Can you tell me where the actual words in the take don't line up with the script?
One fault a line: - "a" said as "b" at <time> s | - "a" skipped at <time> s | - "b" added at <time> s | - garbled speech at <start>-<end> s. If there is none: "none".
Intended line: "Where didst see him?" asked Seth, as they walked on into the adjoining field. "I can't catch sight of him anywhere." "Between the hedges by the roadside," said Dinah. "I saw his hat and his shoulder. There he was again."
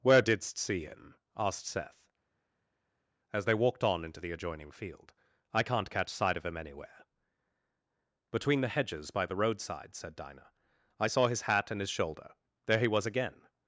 none